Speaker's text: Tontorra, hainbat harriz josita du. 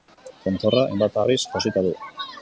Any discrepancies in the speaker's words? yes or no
no